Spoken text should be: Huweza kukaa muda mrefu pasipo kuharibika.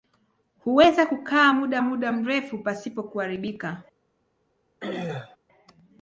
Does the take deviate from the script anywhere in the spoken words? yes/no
yes